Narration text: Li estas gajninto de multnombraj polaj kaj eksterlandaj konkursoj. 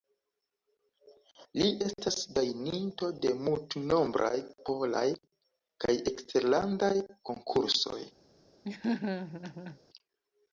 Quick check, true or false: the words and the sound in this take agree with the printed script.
false